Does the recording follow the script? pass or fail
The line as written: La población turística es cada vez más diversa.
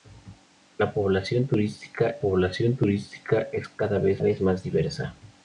fail